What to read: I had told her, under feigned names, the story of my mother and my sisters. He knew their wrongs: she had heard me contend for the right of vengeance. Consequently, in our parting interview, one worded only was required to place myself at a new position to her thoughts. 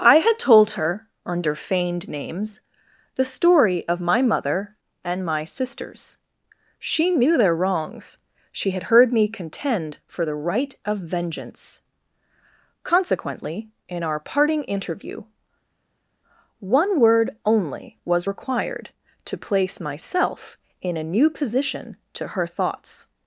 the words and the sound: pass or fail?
fail